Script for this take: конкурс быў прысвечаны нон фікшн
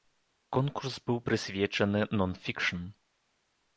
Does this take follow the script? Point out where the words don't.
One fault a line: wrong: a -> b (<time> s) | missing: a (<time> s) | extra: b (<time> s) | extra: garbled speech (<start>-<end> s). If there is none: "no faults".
no faults